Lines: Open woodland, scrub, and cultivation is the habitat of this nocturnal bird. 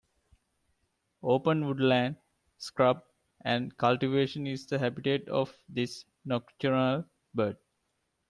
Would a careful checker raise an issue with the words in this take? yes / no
no